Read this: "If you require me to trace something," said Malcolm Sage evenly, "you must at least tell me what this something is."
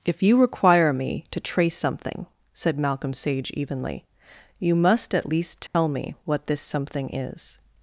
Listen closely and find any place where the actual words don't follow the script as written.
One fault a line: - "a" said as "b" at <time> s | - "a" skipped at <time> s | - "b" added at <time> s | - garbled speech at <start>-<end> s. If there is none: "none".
none